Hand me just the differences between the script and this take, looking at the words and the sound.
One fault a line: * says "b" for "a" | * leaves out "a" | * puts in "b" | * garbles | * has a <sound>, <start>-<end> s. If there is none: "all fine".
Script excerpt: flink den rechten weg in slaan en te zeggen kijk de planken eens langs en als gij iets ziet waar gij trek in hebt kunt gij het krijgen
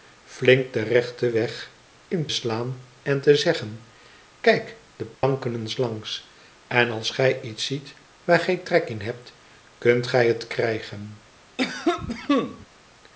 * has a dropout, 5.1-5.2 s
* has a cough, 11.6-12.7 s